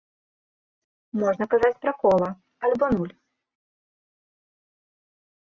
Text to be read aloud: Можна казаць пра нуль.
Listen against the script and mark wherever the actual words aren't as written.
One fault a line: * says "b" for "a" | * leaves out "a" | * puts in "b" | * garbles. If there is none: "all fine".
* puts in "кола альбо"